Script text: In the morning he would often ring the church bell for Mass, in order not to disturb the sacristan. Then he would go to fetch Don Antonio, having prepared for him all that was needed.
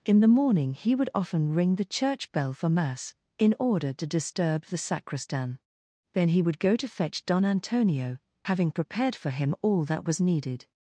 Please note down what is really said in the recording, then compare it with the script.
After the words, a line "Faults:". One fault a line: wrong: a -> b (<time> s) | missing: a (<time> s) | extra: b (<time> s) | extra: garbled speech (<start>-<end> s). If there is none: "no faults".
In the morning he would often ring the church bell for Mass, in order to disturb the sacristan. Then he would go to fetch Don Antonio, having prepared for him all that was needed.
Faults:
missing: not (3.9 s)